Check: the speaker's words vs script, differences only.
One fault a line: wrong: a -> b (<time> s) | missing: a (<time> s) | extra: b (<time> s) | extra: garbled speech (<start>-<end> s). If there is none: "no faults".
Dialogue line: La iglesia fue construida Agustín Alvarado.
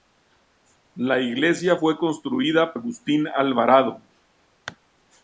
no faults